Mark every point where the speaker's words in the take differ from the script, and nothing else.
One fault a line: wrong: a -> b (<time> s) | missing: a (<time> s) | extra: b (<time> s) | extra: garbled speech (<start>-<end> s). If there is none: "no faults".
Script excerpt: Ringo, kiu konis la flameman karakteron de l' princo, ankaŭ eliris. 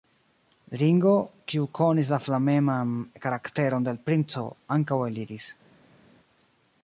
no faults